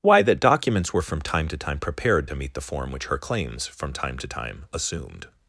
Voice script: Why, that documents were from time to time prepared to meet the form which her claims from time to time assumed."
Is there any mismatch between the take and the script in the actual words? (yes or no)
no